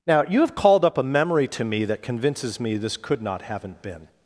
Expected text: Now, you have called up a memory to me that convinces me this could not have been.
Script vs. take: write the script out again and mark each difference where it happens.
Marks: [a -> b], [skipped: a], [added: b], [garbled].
Now, you have called up a memory to me that convinces me this could not [have -> haven't] been.